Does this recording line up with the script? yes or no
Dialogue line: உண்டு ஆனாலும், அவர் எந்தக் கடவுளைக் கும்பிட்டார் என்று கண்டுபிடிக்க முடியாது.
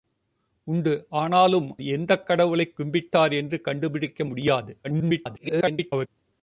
no